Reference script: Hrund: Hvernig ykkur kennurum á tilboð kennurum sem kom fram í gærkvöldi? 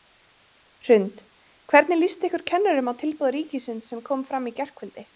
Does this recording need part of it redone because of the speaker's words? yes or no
yes